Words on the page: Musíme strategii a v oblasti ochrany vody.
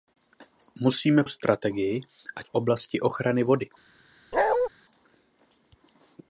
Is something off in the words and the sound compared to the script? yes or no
yes